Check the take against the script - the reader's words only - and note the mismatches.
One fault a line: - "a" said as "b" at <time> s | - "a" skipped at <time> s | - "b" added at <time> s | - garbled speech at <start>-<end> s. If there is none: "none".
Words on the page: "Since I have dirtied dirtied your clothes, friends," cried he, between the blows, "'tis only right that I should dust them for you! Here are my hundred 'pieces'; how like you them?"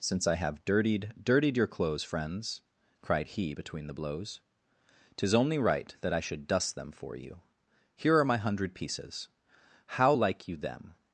none